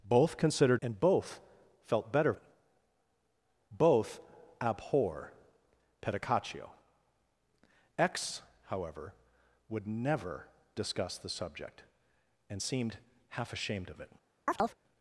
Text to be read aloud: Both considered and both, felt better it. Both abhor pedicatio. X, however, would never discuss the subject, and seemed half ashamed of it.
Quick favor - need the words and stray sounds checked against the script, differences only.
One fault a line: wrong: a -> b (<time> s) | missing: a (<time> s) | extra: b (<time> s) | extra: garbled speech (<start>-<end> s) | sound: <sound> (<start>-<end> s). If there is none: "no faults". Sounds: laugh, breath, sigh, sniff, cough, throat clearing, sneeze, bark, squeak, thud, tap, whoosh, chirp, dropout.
sound: chirp (14.5-14.8 s)